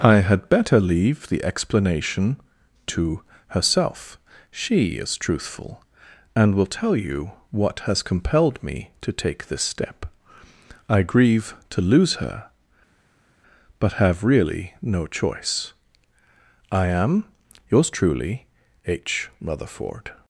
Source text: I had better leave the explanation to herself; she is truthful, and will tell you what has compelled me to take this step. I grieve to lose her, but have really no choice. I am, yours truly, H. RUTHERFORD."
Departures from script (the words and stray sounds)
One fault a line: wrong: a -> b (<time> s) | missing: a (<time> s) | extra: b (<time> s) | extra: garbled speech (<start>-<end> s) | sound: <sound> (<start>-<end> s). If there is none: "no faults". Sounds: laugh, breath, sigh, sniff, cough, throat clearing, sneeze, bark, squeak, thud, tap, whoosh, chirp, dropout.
no faults